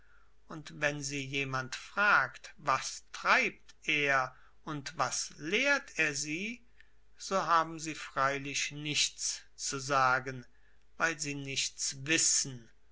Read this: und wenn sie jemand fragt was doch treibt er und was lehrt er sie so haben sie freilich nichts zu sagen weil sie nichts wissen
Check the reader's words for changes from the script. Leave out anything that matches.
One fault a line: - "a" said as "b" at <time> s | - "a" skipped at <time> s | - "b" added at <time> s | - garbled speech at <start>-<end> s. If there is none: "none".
- "doch" skipped at 3.0 s